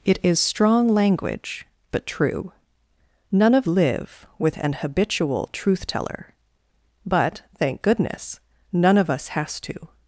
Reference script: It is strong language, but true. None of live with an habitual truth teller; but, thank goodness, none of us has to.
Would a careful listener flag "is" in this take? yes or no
no